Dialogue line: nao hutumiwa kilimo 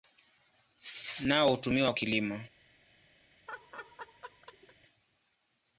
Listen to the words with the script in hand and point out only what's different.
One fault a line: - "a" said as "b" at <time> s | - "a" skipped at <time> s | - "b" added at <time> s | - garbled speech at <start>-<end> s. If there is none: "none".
none